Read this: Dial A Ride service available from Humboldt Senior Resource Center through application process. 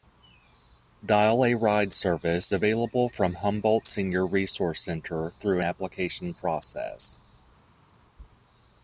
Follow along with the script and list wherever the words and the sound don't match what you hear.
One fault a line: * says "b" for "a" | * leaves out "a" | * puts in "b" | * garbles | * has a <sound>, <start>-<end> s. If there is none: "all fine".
all fine